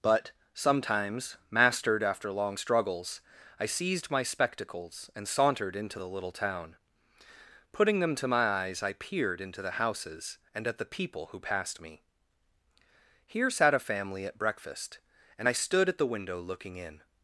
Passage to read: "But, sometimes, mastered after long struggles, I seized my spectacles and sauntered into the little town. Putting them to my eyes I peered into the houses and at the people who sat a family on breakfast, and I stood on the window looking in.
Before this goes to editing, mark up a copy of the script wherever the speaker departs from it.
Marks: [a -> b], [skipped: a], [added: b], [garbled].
"But, sometimes, mastered after long struggles, I seized my spectacles and sauntered into the little town. Putting them to my eyes I peered into the houses and at the people who [added: passed me Here] sat a family [on -> at] breakfast, and I stood [on -> at] the window looking in.